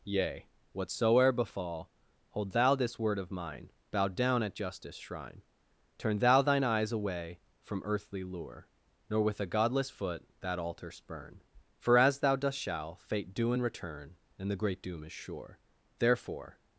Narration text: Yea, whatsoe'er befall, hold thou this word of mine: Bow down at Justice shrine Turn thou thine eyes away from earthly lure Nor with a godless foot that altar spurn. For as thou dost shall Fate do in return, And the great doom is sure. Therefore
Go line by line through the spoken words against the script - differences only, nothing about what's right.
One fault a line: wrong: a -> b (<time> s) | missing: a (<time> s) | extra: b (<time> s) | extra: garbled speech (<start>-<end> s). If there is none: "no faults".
no faults